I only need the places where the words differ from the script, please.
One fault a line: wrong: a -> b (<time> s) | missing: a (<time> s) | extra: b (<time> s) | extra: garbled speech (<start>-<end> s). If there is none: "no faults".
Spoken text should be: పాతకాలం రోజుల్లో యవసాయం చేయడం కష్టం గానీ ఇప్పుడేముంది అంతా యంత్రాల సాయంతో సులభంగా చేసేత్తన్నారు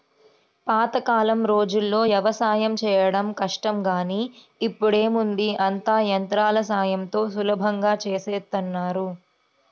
no faults